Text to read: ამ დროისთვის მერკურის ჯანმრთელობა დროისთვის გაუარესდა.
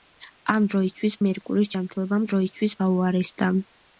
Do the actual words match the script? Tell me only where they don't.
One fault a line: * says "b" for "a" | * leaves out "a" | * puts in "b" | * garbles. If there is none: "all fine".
all fine